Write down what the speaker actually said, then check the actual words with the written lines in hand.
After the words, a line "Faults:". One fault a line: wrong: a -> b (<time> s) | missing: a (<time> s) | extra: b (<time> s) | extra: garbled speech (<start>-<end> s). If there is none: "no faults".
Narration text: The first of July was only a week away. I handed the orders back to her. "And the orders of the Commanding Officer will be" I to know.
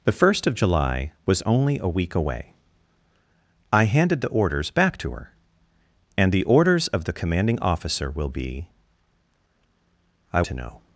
The first of July was only a week away. I handed the orders back to her. "And the orders of the Commanding Officer will be" I to know.
Faults:
no faults